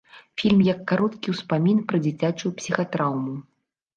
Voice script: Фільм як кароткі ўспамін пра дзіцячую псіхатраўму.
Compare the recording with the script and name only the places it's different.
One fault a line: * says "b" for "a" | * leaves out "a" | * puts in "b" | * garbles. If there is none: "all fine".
all fine